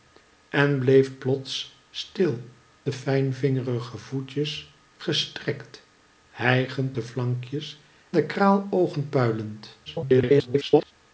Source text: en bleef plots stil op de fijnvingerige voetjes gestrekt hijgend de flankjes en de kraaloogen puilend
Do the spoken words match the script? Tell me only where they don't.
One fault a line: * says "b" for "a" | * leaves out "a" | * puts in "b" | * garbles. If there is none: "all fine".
* leaves out "op"
* leaves out "en"
* garbles